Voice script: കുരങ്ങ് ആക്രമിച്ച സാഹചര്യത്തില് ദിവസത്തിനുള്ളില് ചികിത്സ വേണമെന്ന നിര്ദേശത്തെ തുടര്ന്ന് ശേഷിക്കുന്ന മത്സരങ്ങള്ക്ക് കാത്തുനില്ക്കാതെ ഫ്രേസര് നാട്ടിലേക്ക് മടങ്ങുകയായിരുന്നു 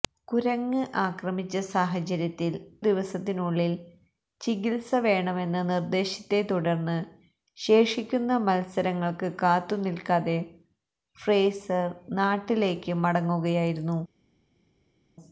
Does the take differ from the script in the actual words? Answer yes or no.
no